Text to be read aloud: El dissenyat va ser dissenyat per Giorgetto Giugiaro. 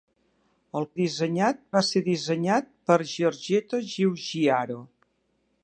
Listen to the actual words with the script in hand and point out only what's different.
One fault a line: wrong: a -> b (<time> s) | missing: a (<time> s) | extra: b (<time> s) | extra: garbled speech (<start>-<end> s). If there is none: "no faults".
no faults